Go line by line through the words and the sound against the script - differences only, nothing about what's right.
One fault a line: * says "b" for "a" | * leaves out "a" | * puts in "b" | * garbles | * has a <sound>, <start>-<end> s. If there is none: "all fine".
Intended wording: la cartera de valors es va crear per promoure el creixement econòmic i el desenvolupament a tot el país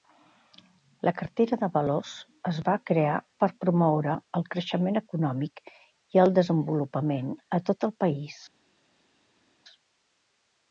all fine